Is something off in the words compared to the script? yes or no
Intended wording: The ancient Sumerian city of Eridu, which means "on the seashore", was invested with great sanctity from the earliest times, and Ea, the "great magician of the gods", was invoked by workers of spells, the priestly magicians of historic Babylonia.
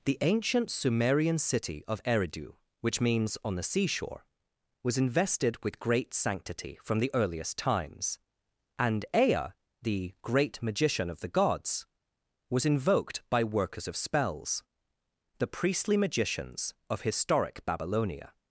no